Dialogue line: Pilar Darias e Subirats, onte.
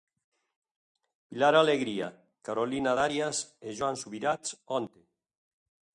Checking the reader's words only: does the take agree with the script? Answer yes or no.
no